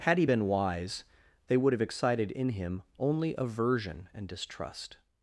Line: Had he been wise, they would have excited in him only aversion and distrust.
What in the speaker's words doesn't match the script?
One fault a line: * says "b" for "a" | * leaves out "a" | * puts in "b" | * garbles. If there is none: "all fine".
all fine